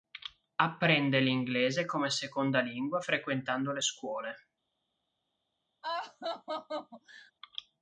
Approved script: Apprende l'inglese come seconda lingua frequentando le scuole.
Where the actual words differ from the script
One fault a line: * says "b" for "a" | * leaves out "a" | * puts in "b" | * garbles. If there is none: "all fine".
all fine